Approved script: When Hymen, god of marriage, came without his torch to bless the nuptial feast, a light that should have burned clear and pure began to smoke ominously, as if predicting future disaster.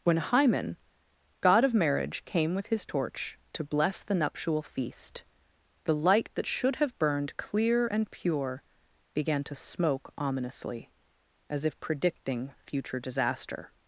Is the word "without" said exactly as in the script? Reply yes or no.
no